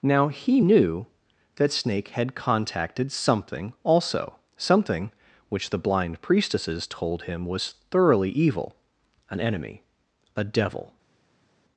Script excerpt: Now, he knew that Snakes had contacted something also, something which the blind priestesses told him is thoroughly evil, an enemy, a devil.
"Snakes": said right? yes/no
no